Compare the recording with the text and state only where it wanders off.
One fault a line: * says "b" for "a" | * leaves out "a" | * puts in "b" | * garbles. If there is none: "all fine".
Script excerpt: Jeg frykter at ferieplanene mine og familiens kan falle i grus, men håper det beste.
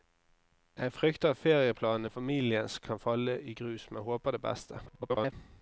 * leaves out "mine"
* garbles